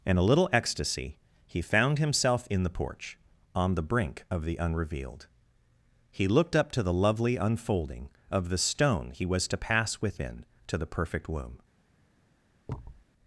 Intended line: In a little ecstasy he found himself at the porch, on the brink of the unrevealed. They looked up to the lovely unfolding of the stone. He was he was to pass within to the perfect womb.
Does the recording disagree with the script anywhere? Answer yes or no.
yes